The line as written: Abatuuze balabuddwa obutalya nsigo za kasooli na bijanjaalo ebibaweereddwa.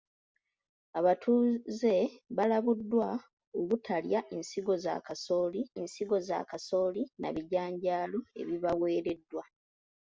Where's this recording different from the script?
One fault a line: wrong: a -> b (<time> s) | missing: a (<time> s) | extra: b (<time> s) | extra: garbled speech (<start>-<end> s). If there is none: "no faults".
extra: nsigo za kasooli (5.8 s)